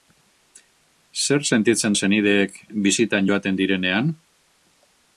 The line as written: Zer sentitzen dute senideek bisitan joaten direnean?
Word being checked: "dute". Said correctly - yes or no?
no